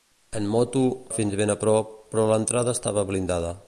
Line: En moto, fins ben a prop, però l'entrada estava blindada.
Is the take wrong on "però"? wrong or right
right